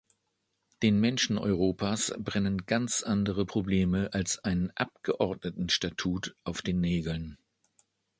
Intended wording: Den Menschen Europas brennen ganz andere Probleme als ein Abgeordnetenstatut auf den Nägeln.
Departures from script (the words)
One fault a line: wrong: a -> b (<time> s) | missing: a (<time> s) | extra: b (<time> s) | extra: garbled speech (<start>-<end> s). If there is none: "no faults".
no faults